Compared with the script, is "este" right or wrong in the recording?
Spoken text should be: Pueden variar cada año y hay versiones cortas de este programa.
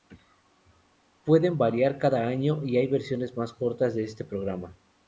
right